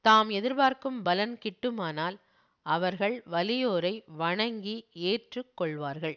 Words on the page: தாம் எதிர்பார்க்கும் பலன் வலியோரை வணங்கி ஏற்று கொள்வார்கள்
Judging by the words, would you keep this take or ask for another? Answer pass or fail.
fail